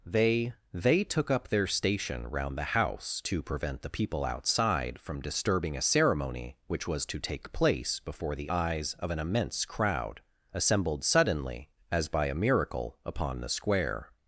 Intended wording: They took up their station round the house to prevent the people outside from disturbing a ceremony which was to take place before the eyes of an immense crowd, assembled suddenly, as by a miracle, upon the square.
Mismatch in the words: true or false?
true